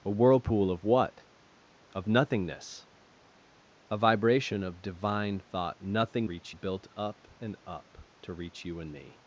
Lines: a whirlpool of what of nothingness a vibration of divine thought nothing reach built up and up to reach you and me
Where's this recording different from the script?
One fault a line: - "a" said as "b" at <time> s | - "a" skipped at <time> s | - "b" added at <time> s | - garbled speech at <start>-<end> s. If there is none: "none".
none